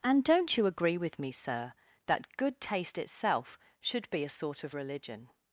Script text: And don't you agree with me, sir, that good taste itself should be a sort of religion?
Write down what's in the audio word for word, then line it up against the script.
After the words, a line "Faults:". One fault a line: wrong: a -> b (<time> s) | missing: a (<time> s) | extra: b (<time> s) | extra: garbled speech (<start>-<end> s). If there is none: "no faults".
And don't you agree with me, sir, that good taste itself should be a sort of religion?
Faults:
no faults